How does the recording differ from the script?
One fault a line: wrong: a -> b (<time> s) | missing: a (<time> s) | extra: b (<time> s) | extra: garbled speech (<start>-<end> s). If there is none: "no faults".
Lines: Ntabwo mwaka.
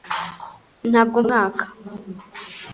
no faults